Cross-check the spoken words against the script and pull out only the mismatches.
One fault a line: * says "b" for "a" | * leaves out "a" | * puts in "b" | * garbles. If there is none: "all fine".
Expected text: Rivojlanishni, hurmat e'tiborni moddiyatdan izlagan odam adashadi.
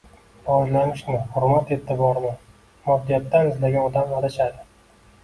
all fine